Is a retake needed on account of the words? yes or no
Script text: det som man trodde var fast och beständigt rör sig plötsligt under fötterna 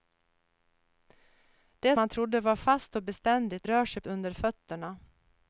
yes